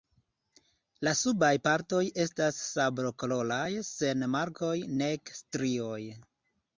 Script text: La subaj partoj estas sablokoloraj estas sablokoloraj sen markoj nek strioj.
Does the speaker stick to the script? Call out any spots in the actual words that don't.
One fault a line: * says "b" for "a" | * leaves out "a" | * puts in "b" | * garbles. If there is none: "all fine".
* leaves out "estas sablokoloraj"